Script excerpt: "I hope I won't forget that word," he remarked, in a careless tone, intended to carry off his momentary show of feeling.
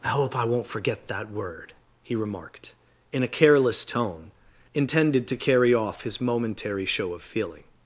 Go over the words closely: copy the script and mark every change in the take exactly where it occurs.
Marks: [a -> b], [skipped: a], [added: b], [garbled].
"I hope I won't forget that word," he remarked, in a careless tone, intended to carry off his momentary show of feeling.